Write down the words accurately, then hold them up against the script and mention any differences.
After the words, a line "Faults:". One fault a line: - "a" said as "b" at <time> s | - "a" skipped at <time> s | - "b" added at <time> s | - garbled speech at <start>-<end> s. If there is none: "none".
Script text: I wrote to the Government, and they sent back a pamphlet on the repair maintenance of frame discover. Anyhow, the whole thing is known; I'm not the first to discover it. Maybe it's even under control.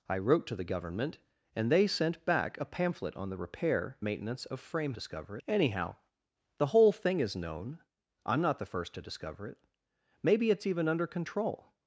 I wrote to the Government, and they sent back a pamphlet on the repair maintenance of frame discover. Anyhow, the whole thing is known; I'm not the first to discover it. Maybe it's even under control.
Faults:
none